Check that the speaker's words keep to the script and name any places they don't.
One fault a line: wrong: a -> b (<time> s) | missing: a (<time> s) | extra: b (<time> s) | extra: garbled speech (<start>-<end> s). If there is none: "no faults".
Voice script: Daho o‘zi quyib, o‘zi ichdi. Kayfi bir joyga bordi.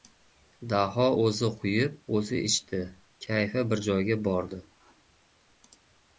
no faults